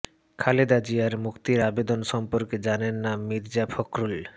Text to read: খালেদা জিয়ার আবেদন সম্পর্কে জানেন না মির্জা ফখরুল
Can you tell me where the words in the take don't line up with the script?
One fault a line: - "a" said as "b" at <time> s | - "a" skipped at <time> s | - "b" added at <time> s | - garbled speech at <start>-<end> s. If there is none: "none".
- "মুক্তির" added at 1.2 s